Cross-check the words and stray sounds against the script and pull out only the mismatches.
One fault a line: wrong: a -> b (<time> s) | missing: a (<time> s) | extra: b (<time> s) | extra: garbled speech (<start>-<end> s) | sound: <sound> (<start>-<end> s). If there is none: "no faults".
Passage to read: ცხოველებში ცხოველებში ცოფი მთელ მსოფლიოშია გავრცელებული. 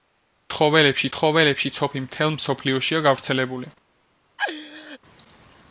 sound: laugh (4.4-5.0 s)